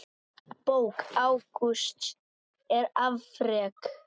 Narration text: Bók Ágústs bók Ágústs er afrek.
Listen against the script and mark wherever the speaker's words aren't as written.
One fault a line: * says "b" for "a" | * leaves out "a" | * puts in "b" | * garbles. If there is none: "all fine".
* leaves out "bók Ágústs"